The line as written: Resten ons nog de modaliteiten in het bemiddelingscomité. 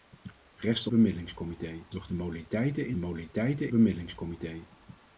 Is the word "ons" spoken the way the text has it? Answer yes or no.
no